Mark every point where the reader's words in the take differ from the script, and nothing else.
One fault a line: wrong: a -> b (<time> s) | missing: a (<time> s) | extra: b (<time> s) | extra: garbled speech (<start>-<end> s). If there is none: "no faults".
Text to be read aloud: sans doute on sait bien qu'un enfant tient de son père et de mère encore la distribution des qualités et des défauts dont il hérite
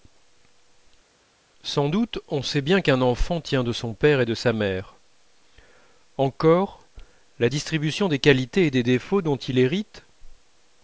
extra: sa (4.3 s)